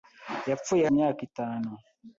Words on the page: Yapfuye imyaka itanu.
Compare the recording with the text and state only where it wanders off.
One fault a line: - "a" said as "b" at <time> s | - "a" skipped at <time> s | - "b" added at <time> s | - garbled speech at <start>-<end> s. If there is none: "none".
none